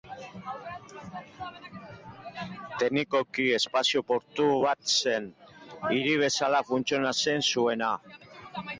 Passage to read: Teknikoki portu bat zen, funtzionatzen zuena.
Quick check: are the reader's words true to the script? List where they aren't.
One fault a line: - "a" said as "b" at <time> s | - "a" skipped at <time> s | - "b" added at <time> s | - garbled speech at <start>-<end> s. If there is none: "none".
- "espazio" added at 3.6 s
- "hiri bezala" added at 5.9 s